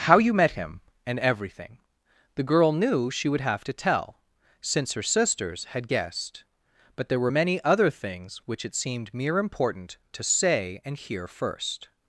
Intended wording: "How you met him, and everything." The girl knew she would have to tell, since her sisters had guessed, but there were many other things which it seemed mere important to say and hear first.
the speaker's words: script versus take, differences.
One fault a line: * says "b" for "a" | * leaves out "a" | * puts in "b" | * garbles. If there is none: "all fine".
all fine